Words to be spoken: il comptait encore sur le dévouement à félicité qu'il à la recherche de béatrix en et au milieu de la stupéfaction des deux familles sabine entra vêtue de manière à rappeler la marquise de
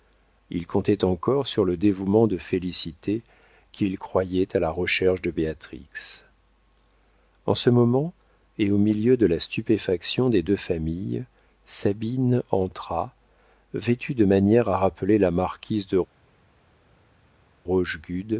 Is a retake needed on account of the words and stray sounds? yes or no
yes